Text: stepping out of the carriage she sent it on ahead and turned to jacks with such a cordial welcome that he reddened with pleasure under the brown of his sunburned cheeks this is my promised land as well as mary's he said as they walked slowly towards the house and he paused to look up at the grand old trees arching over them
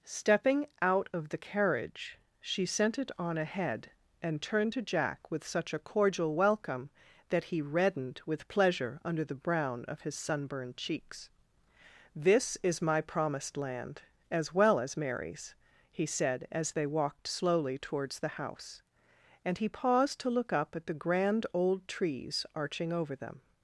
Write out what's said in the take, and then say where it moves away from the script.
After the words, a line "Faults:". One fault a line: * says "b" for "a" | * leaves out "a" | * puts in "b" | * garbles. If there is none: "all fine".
stepping out of the carriage she sent it on ahead and turned to jack with such a cordial welcome that he reddened with pleasure under the brown of his sunburned cheeks this is my promised land as well as mary's he said as they walked slowly towards the house and he paused to look up at the grand old trees arching over them
Faults:
* says "jack" for "jacks"